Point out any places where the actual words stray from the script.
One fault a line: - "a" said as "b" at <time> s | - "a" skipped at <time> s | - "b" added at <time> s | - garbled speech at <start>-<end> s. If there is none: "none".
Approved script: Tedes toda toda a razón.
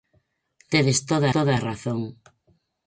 none